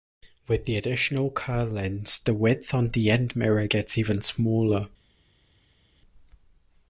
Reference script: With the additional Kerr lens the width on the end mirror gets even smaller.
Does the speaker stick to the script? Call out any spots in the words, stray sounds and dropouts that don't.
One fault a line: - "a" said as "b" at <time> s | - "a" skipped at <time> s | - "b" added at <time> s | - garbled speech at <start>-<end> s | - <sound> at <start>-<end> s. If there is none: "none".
none